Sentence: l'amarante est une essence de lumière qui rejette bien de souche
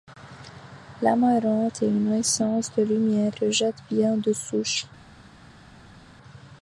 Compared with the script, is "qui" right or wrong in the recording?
wrong